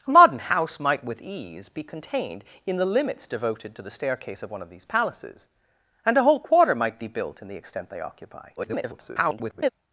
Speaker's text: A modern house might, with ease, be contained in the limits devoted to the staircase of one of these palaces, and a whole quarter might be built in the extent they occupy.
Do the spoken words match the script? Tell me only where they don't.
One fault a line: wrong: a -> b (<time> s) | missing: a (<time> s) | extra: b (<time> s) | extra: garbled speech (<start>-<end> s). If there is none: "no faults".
extra: garbled speech (8.6-9.7 s)